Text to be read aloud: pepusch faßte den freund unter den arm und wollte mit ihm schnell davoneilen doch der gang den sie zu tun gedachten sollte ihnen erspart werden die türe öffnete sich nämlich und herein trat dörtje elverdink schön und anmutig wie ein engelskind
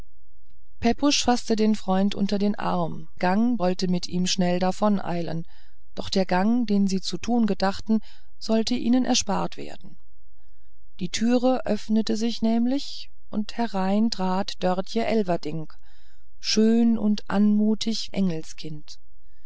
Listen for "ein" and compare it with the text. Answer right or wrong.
wrong